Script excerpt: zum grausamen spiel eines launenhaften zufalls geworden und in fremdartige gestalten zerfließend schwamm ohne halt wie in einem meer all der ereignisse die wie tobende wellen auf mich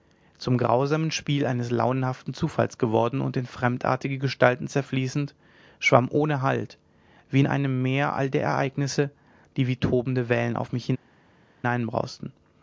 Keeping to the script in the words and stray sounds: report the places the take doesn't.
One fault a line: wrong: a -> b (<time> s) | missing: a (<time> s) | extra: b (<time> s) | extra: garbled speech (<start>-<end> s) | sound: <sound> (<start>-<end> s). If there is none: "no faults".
no faults